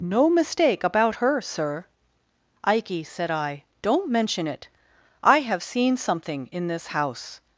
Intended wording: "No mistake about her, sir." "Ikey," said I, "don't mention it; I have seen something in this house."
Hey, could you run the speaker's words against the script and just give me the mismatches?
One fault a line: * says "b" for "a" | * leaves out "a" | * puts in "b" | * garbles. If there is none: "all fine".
all fine